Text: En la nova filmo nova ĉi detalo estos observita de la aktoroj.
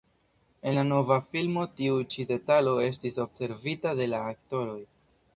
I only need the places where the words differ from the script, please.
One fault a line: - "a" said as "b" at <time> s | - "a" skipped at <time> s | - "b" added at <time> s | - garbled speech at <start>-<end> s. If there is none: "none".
- "nova" said as "tiu" at 1.8 s
- "estos" said as "estis" at 2.9 s